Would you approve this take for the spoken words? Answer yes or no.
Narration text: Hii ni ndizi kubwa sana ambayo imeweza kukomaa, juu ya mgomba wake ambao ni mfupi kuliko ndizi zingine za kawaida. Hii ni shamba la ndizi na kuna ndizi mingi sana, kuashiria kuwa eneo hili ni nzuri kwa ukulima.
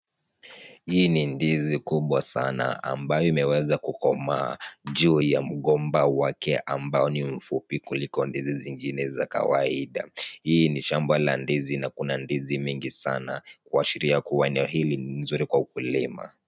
yes